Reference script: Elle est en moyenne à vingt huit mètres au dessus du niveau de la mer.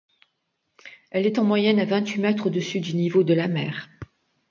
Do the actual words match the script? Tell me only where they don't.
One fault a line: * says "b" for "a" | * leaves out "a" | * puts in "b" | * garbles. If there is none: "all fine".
all fine